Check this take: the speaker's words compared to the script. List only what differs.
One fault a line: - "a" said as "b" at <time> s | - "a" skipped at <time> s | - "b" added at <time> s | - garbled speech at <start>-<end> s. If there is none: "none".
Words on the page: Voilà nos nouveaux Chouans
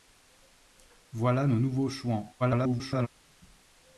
- garbled speech at 2.4-3.1 s